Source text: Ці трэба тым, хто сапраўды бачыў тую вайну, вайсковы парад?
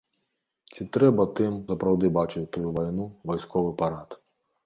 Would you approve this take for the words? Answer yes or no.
no